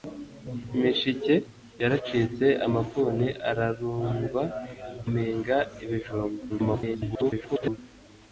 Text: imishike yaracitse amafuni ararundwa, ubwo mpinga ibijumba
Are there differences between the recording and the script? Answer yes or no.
yes